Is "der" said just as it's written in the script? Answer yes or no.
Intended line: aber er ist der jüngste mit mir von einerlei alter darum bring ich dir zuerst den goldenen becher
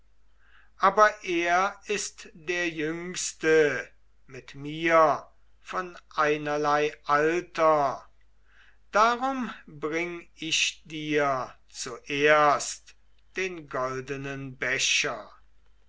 yes